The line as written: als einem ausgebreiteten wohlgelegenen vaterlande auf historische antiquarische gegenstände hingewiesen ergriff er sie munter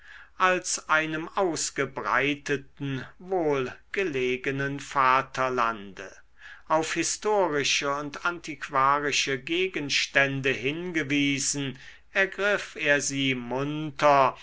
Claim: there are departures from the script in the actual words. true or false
true